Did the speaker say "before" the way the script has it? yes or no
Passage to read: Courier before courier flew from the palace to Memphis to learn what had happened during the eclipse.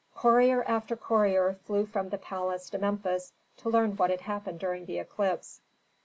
no